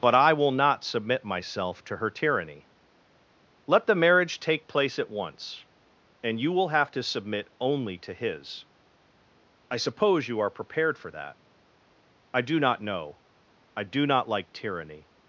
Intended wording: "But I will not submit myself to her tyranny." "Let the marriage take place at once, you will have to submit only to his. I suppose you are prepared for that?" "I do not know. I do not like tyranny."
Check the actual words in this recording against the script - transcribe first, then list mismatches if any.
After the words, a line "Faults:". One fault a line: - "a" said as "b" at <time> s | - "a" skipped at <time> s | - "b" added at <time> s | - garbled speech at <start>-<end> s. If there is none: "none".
"But I will not submit myself to her tyranny." "Let the marriage take place at once, and you will have to submit only to his. I suppose you are prepared for that?" "I do not know. I do not like tyranny."
Faults:
- "and" added at 6.2 s